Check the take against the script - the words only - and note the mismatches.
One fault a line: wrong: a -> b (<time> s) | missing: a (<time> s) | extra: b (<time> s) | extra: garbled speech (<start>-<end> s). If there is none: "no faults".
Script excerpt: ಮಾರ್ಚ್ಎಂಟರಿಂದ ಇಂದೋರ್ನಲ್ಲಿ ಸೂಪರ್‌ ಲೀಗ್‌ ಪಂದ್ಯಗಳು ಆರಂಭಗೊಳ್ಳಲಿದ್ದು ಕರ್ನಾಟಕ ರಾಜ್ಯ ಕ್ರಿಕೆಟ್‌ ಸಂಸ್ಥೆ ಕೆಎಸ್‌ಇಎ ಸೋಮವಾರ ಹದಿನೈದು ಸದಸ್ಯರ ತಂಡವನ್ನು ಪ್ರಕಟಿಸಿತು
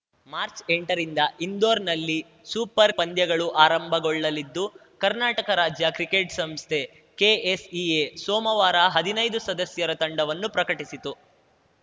missing: ಲೀಗ್ (2.9 s)